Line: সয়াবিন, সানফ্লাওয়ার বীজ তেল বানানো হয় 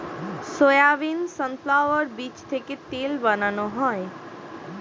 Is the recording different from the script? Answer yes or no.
yes